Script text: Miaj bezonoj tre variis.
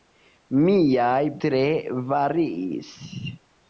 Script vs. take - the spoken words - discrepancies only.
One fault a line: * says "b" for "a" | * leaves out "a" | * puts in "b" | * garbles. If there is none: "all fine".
* leaves out "bezonoj"